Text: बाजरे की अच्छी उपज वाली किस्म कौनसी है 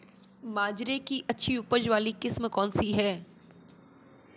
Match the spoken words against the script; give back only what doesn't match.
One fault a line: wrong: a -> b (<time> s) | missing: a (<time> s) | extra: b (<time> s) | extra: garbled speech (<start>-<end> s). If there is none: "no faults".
no faults